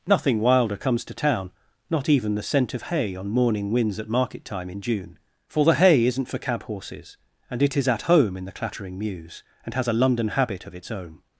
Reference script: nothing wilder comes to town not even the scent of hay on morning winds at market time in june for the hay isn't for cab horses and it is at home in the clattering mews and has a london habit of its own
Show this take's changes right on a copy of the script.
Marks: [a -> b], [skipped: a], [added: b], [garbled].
nothing wilder comes to town not even the scent of hay on morning winds at market time in june for the hay isn't for cab horses and it is at home in the clattering mews and has a london habit of its own